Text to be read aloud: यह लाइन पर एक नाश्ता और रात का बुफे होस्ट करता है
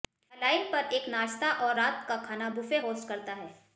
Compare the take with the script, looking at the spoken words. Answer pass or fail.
fail